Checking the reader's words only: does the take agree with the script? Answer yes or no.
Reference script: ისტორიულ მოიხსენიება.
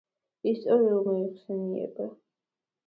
yes